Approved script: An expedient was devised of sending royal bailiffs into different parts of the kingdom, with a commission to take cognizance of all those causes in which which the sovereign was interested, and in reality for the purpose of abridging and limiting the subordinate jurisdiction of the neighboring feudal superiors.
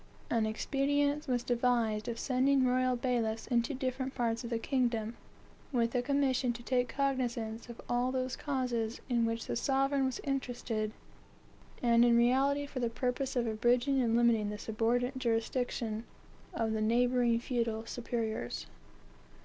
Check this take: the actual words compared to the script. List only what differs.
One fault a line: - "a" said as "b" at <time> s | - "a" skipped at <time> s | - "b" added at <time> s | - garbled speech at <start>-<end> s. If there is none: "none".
- "which" skipped at 9.4 s